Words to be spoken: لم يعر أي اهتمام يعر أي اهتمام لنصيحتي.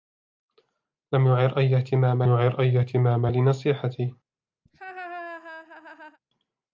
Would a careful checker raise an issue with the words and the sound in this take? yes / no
yes